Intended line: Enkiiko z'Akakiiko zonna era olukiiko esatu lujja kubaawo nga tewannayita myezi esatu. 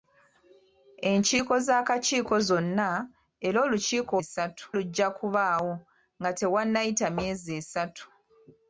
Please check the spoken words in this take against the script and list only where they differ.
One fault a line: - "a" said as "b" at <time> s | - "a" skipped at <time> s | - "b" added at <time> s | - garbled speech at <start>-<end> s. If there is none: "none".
none